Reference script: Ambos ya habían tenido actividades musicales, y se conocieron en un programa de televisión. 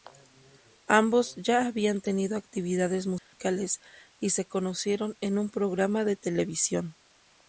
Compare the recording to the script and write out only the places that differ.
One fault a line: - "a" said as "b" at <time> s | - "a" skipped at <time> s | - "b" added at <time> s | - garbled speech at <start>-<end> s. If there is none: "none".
none